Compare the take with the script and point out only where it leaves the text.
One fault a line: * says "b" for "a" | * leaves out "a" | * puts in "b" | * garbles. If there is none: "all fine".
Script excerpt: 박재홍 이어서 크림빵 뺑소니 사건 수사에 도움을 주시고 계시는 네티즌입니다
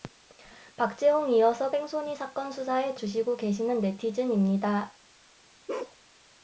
* leaves out "크림빵"
* leaves out "도움을"